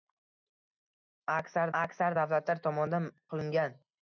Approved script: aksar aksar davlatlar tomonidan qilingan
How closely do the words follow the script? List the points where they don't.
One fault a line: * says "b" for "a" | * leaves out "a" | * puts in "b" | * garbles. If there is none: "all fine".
all fine